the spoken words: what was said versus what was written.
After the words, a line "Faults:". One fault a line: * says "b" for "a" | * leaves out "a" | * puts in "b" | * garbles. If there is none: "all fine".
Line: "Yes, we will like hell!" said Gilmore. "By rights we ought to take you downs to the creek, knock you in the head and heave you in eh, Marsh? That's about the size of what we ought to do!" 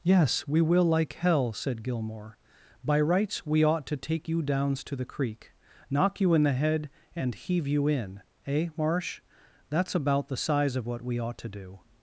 "Yes, we will like hell!" said Gilmore. "By rights we ought to take you downs to the creek, knock you in the head and heave you in eh, Marsh? That's about the size of what we ought to do!"
Faults:
all fine